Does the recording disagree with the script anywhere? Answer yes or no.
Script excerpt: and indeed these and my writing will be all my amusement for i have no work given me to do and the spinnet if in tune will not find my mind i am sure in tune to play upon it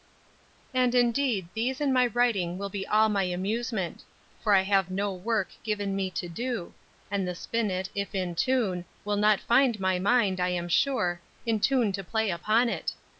no